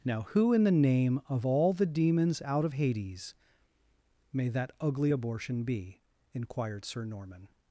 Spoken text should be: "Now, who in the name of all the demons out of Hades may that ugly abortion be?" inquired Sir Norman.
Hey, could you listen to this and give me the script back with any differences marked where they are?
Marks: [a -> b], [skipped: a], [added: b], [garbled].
"Now, who in the name of all the demons out of Hades may that ugly abortion be?" inquired Sir Norman.